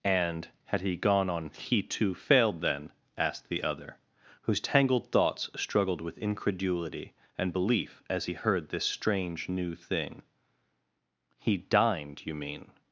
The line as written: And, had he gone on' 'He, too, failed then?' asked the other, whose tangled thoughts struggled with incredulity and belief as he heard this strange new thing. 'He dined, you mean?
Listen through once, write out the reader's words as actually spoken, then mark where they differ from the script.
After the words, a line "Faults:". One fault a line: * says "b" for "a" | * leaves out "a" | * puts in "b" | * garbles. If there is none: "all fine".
And, had he gone on' 'He, too, failed then?' asked the other, whose tangled thoughts struggled with incredulity and belief as he heard this strange new thing. 'He dined, you mean?
Faults:
all fine